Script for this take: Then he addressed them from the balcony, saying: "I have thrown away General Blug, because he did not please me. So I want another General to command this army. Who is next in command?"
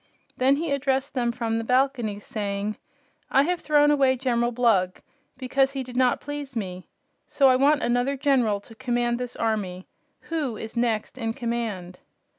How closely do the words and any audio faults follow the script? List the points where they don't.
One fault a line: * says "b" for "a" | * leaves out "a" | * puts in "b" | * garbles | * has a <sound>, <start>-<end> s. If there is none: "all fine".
all fine